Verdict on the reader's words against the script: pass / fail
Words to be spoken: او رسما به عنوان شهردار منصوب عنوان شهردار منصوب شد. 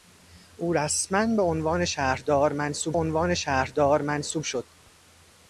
pass